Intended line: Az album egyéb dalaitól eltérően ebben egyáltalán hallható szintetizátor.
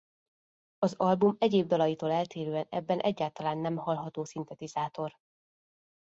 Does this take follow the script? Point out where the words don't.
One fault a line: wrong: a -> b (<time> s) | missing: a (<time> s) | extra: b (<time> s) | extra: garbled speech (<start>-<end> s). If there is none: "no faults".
extra: nem (3.6 s)